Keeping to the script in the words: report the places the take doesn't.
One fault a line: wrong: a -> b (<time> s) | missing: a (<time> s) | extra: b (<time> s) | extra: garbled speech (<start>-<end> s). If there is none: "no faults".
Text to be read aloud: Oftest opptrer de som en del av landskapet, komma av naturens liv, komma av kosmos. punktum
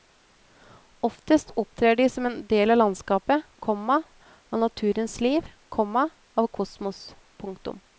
no faults